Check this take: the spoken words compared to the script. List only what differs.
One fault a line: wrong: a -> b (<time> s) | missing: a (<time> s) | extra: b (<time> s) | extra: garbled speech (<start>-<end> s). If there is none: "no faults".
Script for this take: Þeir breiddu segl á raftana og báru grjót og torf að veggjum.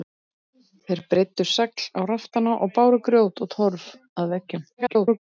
extra: garbled speech (4.8-5.2 s)